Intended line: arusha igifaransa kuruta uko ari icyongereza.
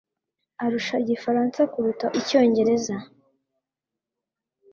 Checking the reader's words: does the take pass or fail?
fail